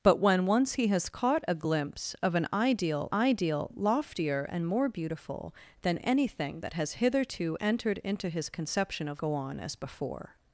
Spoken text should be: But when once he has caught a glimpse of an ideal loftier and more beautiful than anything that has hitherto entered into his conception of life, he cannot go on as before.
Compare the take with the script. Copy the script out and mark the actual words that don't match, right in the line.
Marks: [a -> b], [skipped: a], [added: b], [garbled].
But when once he has caught a glimpse of an ideal [added: ideal] loftier and more beautiful than anything that has hitherto entered into his conception of [skipped: life, he cannot] go on as before.